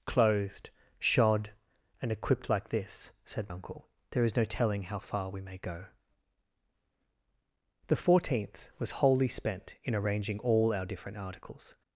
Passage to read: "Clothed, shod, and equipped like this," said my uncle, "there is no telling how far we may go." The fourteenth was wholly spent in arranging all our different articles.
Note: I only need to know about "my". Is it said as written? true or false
false